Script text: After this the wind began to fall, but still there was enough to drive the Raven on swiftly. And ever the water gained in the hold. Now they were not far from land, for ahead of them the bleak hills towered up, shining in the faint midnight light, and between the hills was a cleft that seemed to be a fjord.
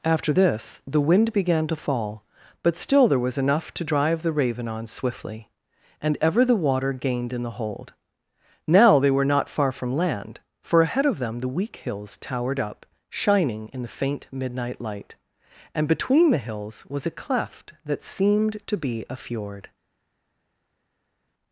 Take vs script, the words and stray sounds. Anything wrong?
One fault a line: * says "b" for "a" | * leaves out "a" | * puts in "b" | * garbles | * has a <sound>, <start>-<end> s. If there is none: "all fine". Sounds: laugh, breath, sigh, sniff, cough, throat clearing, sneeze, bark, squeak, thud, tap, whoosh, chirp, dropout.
* says "weak" for "bleak"